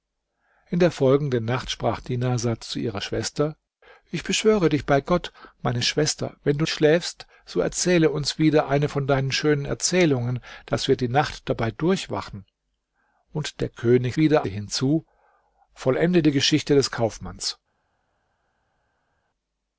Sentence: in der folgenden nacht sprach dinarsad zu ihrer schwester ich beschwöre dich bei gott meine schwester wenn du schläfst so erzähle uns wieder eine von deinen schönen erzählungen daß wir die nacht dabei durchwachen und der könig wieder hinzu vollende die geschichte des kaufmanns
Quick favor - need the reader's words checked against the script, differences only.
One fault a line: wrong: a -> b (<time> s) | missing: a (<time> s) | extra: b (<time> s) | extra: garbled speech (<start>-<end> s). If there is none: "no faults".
no faults